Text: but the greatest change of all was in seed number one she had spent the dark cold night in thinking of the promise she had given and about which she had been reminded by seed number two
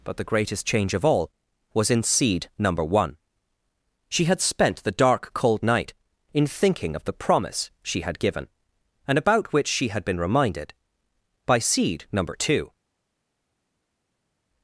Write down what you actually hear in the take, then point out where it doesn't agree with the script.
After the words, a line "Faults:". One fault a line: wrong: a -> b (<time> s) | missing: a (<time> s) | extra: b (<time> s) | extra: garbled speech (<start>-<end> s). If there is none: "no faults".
but the greatest change of all was in seed number one she had spent the dark cold night in thinking of the promise she had given and about which she had been reminded by seed number two
Faults:
no faults